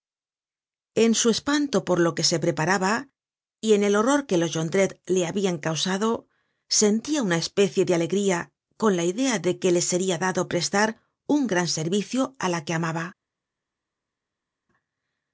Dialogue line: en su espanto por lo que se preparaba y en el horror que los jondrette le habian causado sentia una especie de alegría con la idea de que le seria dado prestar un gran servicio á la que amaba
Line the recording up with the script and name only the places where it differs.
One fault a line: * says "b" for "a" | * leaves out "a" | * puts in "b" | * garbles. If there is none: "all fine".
all fine